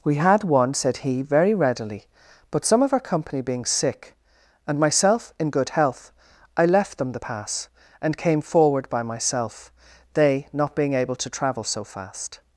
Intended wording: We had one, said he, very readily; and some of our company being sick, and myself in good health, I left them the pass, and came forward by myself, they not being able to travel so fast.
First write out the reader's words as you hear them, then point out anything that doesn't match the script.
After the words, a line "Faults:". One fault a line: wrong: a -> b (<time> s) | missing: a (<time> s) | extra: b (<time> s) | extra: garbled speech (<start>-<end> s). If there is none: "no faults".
We had one, said he, very readily; but some of our company being sick, and myself in good health, I left them the pass, and came forward by myself, they not being able to travel so fast.
Faults:
wrong: and -> but (2.5 s)